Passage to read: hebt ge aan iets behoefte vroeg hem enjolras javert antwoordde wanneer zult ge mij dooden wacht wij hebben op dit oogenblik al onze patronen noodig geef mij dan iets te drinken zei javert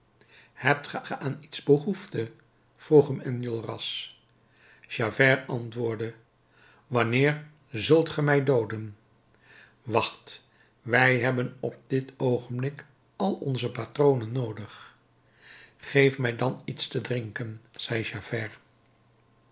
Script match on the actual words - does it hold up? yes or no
no